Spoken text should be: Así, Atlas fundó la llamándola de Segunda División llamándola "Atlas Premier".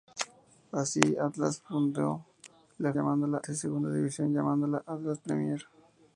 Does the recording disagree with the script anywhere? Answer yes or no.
no